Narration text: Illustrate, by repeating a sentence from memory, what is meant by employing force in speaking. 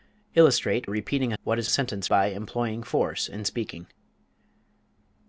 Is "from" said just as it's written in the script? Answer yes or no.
no